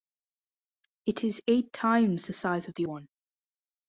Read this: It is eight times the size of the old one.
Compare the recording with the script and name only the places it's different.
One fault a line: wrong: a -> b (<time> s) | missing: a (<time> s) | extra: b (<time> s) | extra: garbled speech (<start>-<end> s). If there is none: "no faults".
missing: old (2.9 s)